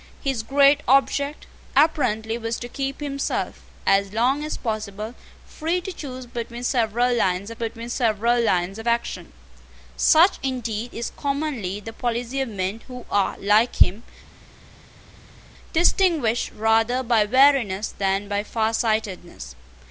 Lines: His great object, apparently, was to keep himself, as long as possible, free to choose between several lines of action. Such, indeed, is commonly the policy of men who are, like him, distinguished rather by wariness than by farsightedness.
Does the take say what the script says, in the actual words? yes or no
no